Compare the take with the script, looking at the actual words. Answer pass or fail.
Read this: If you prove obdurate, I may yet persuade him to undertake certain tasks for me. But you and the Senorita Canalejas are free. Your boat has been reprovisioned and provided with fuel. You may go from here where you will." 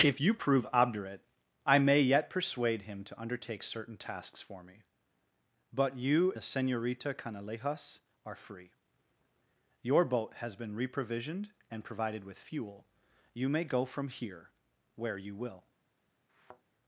fail